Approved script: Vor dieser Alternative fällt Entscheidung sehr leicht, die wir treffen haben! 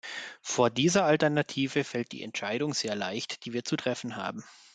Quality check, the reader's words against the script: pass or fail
fail